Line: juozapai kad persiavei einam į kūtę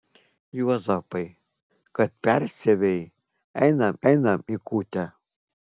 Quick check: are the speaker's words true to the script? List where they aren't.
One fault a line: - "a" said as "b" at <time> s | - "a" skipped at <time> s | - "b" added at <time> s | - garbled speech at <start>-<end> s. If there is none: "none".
- "einam" added at 4.1 s